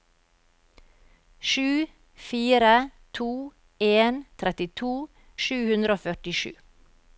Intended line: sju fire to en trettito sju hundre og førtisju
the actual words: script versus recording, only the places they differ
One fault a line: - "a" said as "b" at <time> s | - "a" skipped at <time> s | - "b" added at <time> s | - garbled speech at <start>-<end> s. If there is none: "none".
none